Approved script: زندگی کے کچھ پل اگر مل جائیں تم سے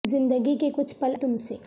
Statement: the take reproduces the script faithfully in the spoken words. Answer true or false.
false